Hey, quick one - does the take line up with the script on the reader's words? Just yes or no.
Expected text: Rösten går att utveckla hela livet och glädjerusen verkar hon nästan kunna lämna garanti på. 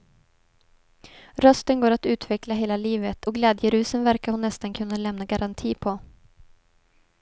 yes